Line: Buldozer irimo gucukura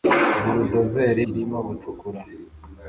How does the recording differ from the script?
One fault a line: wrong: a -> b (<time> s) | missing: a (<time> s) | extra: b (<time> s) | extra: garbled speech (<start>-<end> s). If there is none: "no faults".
no faults